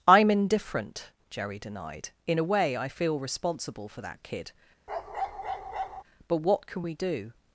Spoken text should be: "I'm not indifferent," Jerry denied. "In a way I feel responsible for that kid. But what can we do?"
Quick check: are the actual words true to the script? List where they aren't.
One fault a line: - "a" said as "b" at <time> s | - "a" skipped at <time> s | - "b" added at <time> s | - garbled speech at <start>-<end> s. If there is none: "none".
- "not" skipped at 0.3 s